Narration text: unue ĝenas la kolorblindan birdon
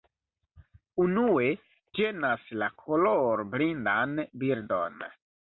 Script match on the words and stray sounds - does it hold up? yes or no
yes